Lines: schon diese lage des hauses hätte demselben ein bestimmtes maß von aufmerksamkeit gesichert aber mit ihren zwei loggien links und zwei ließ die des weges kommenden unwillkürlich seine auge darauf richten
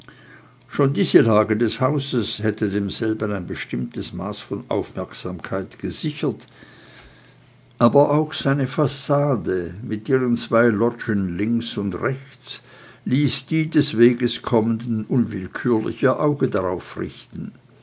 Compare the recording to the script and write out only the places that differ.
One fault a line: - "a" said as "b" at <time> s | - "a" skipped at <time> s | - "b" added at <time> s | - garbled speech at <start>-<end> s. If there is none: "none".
- "auch seine fassade" added at 8.1 s
- "zwei" said as "rechts" at 12.0 s
- "seine" said as "ihr" at 16.0 s